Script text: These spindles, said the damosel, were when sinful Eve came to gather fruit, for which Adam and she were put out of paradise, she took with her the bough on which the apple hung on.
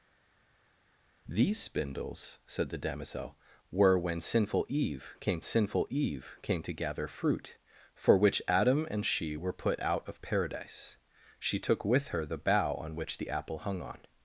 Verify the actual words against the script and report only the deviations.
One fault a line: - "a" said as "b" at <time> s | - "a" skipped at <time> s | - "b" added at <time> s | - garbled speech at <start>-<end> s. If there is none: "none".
- "sinful Eve came" added at 5.4 s